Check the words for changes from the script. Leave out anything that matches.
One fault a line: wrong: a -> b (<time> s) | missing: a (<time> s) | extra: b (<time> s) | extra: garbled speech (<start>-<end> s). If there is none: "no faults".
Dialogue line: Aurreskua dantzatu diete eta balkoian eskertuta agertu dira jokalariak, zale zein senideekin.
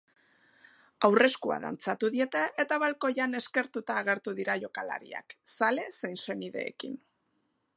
no faults